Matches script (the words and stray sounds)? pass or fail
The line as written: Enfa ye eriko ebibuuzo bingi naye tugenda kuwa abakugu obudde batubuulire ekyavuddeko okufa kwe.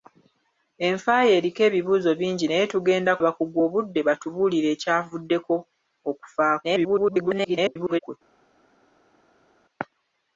fail